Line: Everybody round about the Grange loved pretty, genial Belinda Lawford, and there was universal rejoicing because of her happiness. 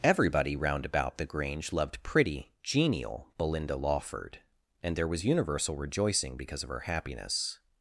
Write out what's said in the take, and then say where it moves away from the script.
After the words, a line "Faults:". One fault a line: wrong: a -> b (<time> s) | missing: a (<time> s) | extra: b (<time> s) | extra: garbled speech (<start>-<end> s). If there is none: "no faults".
Everybody round about the Grange loved pretty, genial Belinda Lawford, and there was universal rejoicing because of her happiness.
Faults:
no faults